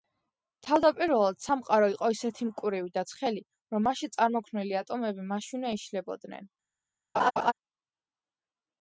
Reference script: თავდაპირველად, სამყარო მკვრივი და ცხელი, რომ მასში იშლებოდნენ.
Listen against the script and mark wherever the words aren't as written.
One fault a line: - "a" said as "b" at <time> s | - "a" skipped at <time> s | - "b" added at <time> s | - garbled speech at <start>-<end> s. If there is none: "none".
- "იყო ისეთი" added at 1.9 s
- "წარმოქმნილი ატომები მაშინვე" added at 4.2 s